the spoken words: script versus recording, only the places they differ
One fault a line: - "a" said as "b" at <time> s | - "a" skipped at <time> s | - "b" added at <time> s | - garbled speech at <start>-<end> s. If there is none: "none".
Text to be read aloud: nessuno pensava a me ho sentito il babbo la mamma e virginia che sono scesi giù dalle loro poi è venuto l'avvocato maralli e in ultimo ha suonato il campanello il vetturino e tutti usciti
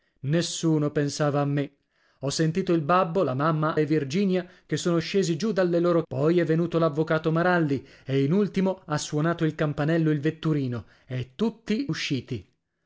none